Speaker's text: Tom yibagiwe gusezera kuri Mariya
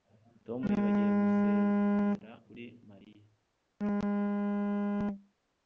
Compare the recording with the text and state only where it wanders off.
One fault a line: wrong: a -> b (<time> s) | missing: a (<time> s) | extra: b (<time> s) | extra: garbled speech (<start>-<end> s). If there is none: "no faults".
no faults